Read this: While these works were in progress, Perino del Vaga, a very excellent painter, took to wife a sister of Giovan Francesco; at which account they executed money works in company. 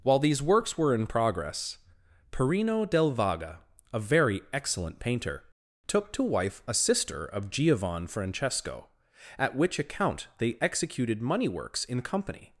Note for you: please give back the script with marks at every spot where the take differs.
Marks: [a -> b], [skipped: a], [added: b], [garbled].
While these works were in progress, Perino del Vaga, a very excellent painter, took to wife a sister of Giovan Francesco; at which account they executed money works in company.